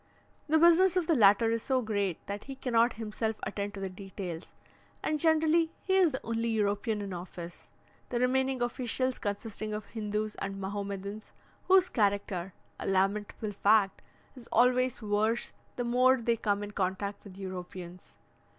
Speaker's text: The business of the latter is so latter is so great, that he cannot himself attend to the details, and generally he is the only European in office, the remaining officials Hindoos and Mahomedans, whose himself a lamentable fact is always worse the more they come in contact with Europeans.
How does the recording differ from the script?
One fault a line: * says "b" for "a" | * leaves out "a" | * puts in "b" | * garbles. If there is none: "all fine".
* leaves out "latter is so"
* puts in "consisting of"
* says "character" for "himself"